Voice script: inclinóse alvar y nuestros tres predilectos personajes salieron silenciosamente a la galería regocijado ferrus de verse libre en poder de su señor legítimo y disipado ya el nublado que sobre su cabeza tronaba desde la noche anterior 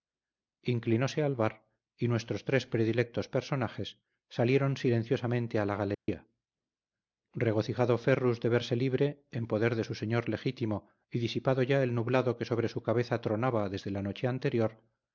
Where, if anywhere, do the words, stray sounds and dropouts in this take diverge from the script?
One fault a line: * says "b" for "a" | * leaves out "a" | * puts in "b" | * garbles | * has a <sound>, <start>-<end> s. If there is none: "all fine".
* has a dropout, 5.9-6.1 s